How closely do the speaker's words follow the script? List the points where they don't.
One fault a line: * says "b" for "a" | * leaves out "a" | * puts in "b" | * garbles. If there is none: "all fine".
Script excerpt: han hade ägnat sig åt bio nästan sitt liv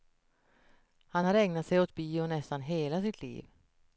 * says "har" for "hade"
* puts in "hela"